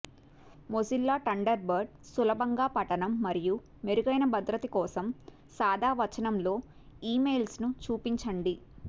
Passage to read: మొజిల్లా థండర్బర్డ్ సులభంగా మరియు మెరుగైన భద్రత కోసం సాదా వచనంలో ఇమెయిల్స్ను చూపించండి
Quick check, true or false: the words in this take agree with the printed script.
false